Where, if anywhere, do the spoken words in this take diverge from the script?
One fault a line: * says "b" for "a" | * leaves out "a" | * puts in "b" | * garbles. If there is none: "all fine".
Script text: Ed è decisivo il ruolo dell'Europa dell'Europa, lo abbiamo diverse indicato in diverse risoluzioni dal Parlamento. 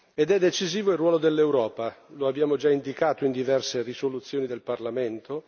* leaves out "dell'Europa"
* says "già" for "diverse"
* says "del" for "dal"